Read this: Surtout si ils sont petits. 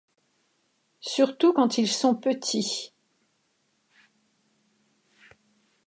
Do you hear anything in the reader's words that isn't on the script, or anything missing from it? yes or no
yes